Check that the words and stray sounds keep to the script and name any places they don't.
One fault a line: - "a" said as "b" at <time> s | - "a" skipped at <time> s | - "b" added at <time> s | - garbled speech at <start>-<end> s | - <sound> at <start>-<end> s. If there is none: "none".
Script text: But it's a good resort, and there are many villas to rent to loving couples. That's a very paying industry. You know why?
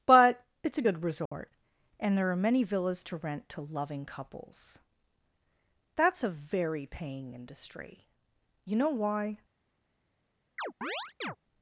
- dropout at 1.3-1.3 s
- chirp at 10.6-11.4 s